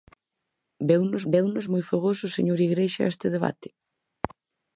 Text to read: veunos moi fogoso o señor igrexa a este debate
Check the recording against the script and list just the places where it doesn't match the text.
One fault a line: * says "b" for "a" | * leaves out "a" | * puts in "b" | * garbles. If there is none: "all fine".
* puts in "veunos"